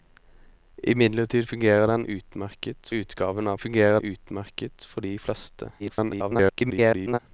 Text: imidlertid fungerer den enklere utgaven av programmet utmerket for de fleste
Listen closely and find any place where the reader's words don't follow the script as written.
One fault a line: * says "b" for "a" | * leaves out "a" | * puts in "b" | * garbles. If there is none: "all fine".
* says "utmerket" for "enklere"
* says "fungerer" for "programmet"
* garbles